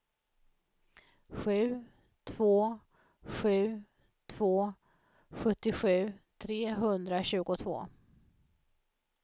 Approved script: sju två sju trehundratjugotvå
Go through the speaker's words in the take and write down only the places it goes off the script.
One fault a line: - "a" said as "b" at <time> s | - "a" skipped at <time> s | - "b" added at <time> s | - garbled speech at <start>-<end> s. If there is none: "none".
- "två sjuttiosju" added at 4.3 s